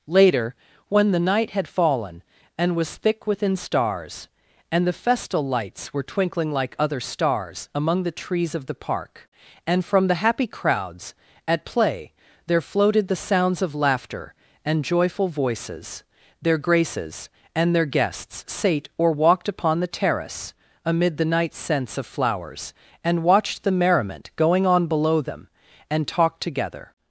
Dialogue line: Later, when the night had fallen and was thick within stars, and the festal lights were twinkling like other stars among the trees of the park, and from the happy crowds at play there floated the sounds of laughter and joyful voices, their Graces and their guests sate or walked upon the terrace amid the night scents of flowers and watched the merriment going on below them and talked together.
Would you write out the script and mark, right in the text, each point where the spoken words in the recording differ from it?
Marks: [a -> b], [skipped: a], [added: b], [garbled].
Later, when the night had fallen and was thick within stars, and the festal lights were twinkling like other stars among the trees of the park, and from the happy crowds at play there floated the sounds of laughter and joyful voices, their Graces and their guests sate or walked upon the terrace amid the night scents of flowers and watched the merriment going on below them and talked together.